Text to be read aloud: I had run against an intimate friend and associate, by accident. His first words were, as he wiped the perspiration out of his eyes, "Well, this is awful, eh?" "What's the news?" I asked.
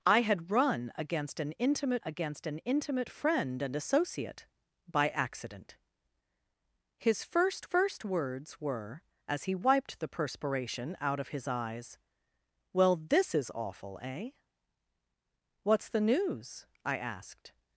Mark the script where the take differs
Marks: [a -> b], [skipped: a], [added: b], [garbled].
I had run against an intimate [added: against an intimate] friend and associate, by accident. His first [added: first] words were, as he wiped the perspiration out of his eyes, "Well, this is awful, eh?" "What's the news?" I asked.